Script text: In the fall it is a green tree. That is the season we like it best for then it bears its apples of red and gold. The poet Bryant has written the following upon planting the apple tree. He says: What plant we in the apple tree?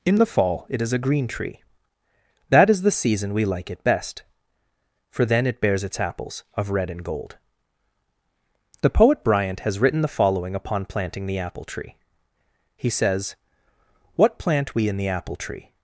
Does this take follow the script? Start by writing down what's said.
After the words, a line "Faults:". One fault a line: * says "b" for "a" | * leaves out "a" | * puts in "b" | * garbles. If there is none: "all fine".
In the fall it is a green tree. That is the season we like it best for then it bears its apples of red and gold. The poet Bryant has written the following upon planting the apple tree. He says: What plant we in the apple tree?
Faults:
all fine